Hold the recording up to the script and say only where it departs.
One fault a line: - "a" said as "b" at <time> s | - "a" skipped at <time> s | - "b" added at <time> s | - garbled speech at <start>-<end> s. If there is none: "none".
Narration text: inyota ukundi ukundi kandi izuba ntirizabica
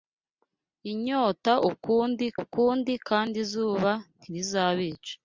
none